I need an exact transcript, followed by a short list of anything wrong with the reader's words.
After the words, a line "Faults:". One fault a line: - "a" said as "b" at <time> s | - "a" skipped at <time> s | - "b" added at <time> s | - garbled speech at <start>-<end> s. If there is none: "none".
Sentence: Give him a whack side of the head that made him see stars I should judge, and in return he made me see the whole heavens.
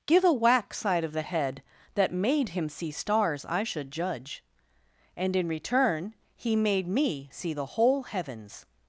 Give a whack side of the head that made him see stars I should judge, and in return he made me see the whole heavens.
Faults:
- "him" skipped at 0.2 s